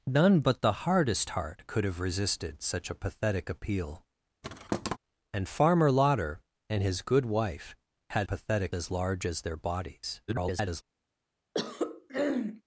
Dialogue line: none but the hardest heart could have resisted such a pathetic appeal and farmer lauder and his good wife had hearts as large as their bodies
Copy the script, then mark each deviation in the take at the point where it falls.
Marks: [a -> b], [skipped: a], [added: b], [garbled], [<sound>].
none but the hardest heart could have resisted such a pathetic appeal [thud] and farmer lauder and his good wife had [hearts -> pathetic] as large as their bodies [garbled] [throat clearing]